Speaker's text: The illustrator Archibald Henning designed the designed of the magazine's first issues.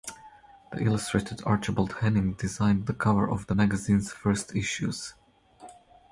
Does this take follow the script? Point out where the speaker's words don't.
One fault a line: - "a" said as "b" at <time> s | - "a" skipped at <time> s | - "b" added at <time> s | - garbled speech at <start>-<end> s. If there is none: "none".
- "designed" said as "cover" at 3.0 s